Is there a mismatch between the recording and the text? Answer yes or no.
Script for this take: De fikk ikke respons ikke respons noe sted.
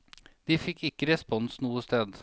yes